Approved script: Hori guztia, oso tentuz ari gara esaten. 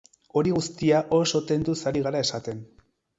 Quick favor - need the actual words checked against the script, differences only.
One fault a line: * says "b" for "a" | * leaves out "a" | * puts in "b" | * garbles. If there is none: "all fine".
all fine